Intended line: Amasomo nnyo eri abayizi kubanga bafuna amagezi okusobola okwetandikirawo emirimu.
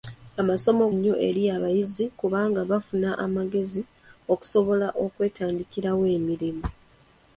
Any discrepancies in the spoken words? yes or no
no